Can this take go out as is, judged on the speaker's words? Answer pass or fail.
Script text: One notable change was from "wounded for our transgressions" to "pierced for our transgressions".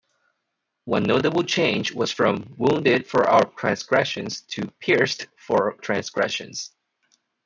fail